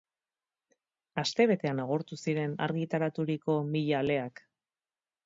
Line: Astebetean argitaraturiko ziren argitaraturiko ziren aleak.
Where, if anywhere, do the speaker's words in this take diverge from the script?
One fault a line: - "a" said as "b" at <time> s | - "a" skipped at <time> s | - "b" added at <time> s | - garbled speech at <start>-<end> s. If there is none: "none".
- "argitaraturiko" said as "agortu" at 1.8 s
- "ziren" said as "mila" at 3.7 s